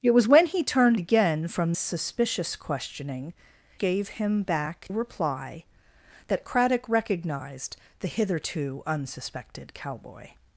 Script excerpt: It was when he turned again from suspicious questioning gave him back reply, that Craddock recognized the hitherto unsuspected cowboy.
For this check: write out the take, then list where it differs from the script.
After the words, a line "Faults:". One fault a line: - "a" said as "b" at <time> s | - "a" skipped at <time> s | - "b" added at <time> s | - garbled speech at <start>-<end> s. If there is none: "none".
It was when he turned again from suspicious questioning gave him back reply, that Craddock recognized the hitherto unsuspected cowboy.
Faults:
none